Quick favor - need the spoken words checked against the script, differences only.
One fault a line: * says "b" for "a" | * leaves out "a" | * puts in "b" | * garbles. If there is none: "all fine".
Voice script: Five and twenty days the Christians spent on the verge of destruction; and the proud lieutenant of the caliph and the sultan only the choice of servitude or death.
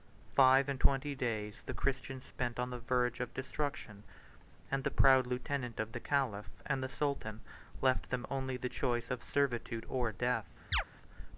* puts in "left them"